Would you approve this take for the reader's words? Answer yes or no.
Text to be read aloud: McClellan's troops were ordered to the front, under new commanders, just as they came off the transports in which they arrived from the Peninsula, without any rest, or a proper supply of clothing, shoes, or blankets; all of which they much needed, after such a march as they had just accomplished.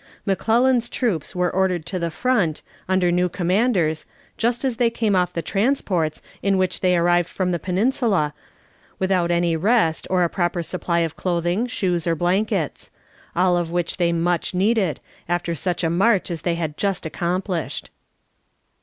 yes